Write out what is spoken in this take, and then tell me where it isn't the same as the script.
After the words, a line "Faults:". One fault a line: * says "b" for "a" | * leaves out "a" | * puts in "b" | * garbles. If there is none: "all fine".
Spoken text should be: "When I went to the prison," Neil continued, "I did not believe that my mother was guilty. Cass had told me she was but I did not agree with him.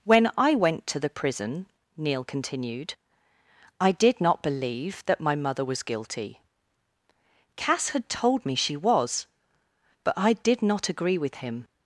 "When I went to the prison," Neil continued, "I did not believe that my mother was guilty. Cass had told me she was but I did not agree with him.
Faults:
all fine